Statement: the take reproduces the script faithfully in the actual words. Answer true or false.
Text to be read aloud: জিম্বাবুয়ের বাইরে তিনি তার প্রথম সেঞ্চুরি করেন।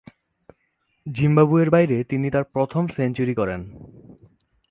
true